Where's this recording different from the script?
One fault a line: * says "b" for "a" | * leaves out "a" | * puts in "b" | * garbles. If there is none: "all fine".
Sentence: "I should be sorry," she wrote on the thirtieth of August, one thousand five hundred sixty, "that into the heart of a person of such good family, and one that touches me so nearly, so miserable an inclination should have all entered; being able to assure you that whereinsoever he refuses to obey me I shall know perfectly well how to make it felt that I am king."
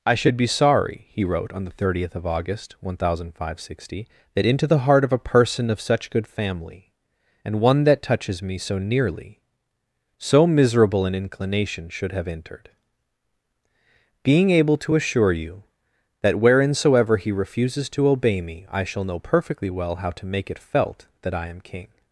* says "he" for "she"
* leaves out "all"